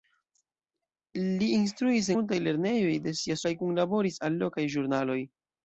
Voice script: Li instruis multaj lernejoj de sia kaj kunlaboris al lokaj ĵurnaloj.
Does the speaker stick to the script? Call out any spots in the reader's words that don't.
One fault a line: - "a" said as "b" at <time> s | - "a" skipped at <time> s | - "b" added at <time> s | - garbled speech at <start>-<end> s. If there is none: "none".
none